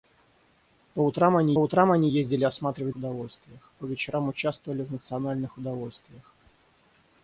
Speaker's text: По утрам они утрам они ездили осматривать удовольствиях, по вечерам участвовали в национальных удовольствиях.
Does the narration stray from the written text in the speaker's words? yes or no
no